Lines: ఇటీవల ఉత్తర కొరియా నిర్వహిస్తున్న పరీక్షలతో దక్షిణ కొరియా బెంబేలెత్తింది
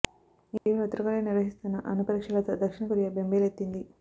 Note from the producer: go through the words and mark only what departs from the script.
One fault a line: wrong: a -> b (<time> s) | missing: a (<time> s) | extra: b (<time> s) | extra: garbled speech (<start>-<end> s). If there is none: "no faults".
extra: అణు (1.9 s)